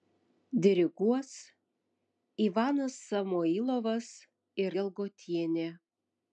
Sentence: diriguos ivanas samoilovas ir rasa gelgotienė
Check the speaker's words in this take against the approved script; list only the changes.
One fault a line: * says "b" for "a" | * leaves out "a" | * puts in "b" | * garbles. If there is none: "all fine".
* leaves out "rasa"